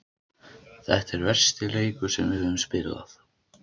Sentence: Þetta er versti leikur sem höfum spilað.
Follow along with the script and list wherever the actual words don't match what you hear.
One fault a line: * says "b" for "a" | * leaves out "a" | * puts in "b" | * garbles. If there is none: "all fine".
all fine